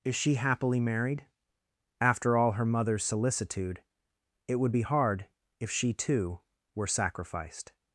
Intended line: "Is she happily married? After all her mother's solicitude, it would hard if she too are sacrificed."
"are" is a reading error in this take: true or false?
true